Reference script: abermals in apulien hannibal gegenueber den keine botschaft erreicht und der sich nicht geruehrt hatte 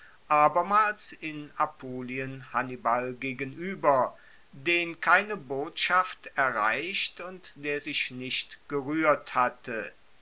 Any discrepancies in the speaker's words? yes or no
no